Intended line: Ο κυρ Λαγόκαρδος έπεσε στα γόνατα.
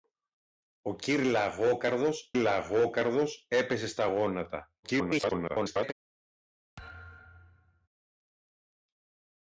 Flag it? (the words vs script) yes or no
yes